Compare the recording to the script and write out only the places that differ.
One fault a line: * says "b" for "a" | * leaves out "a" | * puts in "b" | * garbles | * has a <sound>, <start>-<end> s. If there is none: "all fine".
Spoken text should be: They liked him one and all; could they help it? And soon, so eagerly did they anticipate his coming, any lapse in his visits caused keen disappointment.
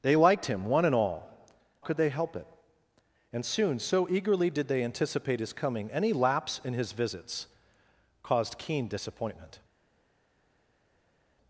all fine